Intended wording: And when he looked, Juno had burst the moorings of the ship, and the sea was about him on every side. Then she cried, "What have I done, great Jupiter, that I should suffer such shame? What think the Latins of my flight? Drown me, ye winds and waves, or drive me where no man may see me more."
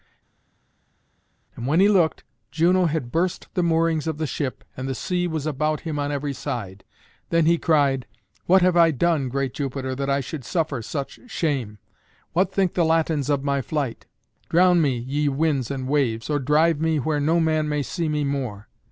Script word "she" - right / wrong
wrong